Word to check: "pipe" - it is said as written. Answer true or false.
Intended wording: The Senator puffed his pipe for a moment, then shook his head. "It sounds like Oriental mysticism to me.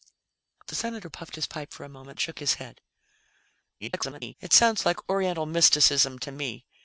true